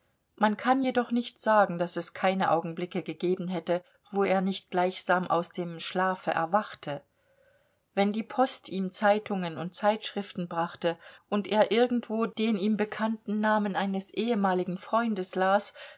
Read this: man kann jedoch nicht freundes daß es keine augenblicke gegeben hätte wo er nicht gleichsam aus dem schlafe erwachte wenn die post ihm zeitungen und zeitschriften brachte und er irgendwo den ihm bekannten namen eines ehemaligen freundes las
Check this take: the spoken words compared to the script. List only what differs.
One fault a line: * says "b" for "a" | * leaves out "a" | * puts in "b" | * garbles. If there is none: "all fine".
* says "sagen" for "freundes"